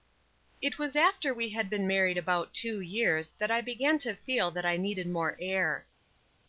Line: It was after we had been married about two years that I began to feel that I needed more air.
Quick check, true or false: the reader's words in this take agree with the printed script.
true